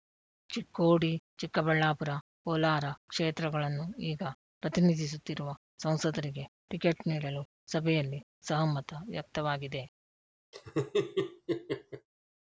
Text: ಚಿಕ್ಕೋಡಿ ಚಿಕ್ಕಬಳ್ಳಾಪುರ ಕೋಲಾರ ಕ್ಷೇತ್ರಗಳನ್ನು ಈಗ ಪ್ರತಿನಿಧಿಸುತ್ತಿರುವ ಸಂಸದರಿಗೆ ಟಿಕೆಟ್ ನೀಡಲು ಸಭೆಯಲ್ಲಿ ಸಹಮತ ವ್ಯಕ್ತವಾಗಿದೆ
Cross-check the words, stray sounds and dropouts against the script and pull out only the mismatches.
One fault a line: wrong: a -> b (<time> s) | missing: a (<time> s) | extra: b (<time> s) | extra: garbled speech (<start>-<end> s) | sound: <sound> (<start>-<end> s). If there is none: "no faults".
sound: laugh (10.5-12.1 s)